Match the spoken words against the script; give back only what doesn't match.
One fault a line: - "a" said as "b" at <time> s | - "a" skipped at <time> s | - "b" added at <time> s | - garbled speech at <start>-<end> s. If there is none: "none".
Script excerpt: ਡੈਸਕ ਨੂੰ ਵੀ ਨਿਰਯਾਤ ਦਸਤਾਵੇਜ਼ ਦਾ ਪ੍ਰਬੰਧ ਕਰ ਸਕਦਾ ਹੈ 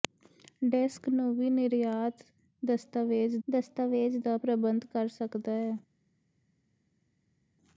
- "ਦਸਤਾਵੇਜ਼" added at 3.5 s